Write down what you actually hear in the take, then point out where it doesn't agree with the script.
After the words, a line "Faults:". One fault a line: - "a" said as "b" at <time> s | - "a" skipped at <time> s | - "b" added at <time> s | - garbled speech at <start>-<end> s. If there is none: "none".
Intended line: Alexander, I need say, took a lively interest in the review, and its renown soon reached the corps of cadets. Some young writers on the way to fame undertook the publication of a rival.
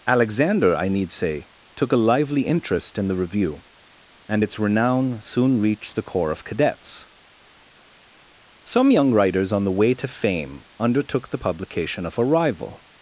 Alexander, I need say, took a lively interest in the review, and its renown soon reached the corps of cadets. Some young writers on the way to fame undertook the publication of a rival.
Faults:
none